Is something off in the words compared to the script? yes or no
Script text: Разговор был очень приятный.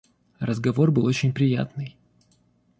no